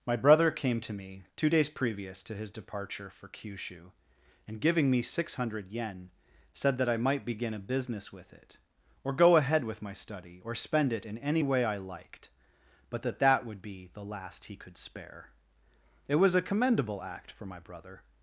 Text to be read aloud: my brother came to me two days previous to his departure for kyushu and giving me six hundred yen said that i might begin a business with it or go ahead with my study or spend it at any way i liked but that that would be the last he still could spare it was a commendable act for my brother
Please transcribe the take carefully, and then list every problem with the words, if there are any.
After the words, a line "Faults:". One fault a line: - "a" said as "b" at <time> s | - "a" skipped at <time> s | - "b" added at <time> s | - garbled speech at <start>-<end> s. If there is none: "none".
my brother came to me two days previous to his departure for kyushu and giving me six hundred yen said that i might begin a business with it or go ahead with my study or spend it in any way i liked but that that would be the last he could spare it was a commendable act for my brother
Faults:
- "at" said as "in" at 11.0 s
- "still" skipped at 14.6 s